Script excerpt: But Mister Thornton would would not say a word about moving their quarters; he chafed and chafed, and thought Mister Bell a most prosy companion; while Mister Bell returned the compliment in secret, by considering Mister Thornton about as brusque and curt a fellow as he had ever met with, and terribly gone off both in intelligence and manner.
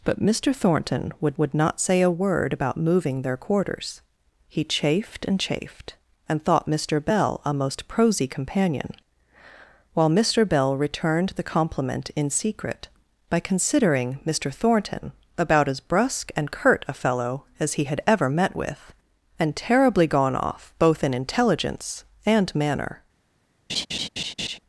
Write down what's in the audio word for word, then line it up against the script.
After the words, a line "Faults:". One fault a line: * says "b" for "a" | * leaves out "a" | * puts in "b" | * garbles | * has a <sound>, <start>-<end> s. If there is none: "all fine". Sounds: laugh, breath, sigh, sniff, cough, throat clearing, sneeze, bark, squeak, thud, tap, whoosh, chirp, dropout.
But Mister Thornton would would not say a word about moving their quarters; he chafed and chafed, and thought Mister Bell a most prosy companion; while Mister Bell returned the compliment in secret, by considering Mister Thornton about as brusque and curt a fellow as he had ever met with, and terribly gone off both in intelligence and manner.
Faults:
* has a laugh, 23.7-24.6 s